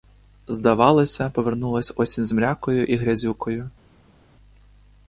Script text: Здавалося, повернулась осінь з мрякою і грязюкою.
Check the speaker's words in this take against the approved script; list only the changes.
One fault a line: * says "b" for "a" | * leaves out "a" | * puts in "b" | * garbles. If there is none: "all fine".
all fine